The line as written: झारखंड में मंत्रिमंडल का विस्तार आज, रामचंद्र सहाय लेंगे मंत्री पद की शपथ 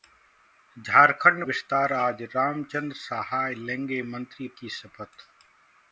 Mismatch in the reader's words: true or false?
true